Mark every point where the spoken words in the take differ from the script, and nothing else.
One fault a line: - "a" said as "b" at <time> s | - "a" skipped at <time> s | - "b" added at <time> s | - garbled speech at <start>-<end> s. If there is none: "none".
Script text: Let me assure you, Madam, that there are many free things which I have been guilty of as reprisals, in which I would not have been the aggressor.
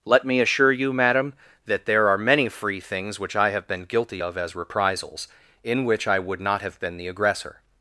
none